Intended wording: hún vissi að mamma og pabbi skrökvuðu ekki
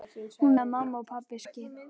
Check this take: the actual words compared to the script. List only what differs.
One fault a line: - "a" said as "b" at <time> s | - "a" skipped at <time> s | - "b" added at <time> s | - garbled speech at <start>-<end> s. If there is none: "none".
- "vissi" skipped at 0.6 s
- "skrökvuðu" skipped at 1.4 s